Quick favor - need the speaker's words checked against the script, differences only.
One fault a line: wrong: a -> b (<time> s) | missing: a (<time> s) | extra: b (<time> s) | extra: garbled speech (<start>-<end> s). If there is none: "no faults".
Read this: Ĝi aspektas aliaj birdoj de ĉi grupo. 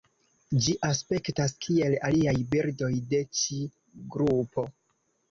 extra: kiel (1.7 s)